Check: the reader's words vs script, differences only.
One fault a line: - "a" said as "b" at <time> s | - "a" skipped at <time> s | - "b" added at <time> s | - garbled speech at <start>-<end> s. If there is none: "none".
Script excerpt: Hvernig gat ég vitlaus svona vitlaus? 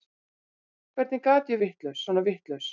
none